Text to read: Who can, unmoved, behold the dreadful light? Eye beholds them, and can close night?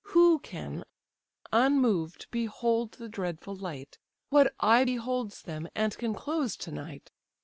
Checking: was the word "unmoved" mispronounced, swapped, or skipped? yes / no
no